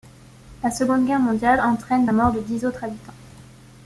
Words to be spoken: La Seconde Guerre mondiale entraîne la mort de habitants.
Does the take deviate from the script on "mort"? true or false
false